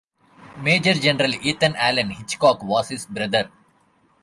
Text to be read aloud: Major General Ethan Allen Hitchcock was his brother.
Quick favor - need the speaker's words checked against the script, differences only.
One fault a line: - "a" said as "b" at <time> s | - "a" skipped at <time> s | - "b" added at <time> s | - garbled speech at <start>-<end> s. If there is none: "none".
none